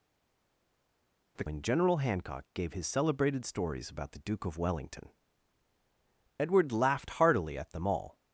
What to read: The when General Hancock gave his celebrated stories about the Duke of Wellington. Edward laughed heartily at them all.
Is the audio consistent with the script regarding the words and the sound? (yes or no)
yes